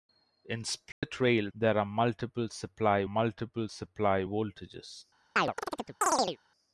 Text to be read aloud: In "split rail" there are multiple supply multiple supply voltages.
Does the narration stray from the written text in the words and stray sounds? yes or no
yes